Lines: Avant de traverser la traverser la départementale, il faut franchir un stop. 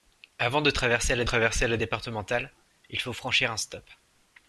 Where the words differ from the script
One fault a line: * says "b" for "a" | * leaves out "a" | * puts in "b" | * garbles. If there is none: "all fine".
all fine